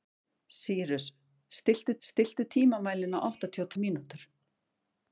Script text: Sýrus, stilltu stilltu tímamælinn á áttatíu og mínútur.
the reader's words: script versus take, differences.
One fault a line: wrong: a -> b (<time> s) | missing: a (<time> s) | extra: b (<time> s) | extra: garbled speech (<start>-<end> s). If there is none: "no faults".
no faults